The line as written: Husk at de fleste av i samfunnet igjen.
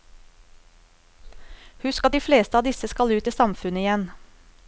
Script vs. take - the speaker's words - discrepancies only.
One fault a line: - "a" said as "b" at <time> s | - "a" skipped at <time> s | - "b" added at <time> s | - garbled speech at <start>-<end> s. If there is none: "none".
- "disse skal ut" added at 2.7 s